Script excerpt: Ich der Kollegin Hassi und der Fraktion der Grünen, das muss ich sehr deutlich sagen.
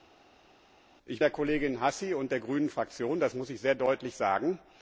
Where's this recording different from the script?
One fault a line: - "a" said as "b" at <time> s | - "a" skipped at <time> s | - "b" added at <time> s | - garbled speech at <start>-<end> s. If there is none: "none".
none